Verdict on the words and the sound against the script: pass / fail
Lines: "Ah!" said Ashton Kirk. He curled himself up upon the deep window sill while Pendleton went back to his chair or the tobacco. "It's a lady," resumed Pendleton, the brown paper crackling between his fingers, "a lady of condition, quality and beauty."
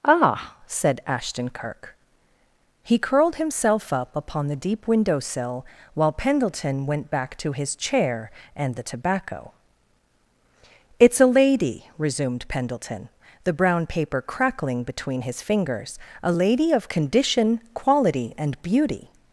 fail